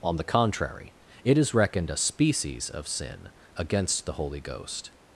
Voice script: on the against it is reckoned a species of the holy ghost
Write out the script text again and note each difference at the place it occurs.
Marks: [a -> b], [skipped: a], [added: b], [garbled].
on the [against -> contrary] it is reckoned a species of [added: sin against] the holy ghost